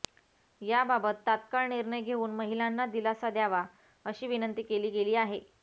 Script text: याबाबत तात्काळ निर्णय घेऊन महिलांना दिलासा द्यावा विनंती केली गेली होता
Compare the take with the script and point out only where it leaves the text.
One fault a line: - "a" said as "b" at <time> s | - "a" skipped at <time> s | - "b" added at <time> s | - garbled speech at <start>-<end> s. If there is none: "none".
- "अशी" added at 4.0 s
- "होता" said as "आहे" at 5.2 s